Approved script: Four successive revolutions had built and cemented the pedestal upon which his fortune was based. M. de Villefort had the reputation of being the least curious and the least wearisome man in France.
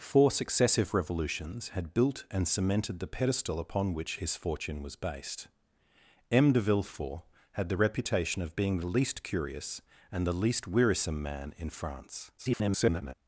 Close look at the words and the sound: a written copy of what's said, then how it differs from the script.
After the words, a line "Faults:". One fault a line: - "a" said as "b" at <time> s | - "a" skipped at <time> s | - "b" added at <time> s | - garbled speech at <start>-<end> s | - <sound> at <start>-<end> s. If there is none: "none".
Four successive revolutions had built and cemented the pedestal upon which his fortune was based. M. de Villefort had the reputation of being the least curious and the least wearisome man in France. [garbled]
Faults:
- garbled speech at 12.4-13.1 s